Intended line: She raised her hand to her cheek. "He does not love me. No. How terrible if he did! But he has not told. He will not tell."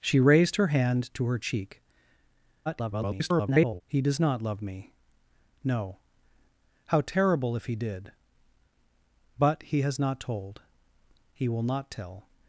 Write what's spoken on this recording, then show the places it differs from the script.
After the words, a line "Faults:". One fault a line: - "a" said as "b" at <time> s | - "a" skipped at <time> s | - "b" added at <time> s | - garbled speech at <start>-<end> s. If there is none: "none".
She raised her hand to her cheek. [garbled] "He does not love me. No. How terrible if he did! But he has not told. He will not tell."
Faults:
- garbled speech at 2.7-3.8 s